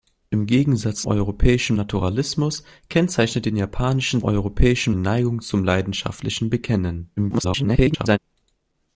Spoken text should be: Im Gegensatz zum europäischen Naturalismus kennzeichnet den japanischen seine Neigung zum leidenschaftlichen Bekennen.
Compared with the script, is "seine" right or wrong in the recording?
wrong